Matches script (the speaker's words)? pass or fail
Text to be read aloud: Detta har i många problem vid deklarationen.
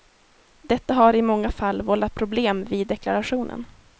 fail